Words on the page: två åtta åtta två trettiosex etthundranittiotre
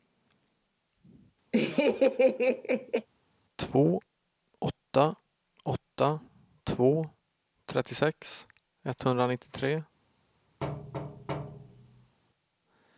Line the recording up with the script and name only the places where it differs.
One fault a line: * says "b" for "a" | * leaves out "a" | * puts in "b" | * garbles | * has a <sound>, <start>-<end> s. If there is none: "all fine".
* has a laugh, 1.5-3.1 s
* has a thud, 10.6-12.2 s